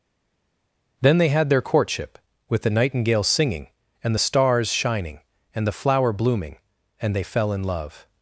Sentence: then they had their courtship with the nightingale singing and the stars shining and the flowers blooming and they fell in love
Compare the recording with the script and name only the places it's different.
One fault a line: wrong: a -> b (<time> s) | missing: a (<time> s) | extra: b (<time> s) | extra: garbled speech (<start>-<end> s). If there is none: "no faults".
wrong: flowers -> flower (5.7 s)